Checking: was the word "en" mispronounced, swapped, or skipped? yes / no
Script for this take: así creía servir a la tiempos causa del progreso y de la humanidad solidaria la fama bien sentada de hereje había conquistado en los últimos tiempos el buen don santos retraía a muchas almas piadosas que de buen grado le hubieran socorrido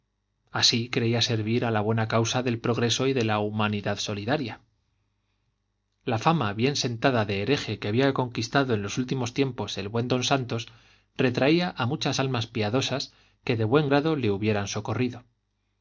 no